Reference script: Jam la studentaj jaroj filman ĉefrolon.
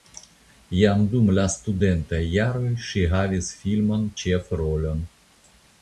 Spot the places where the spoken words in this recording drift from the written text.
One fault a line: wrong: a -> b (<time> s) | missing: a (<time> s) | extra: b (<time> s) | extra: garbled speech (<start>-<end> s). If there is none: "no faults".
extra: dum (1.1 s)
extra: ŝi havis (2.9 s)